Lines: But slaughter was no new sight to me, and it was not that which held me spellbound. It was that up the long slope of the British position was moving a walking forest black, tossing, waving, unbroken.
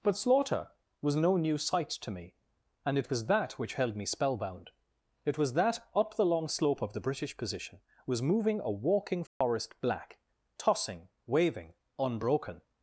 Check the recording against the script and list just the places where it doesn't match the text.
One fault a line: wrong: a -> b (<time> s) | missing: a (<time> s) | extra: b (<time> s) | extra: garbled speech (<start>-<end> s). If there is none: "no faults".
missing: not (3.3 s)